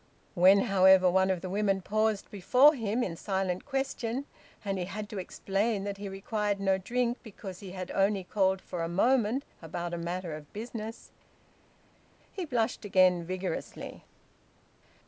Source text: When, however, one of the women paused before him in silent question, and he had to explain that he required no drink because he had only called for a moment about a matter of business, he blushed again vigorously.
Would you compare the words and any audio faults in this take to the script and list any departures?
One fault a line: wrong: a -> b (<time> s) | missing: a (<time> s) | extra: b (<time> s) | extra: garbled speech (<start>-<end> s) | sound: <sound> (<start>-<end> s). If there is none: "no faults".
no faults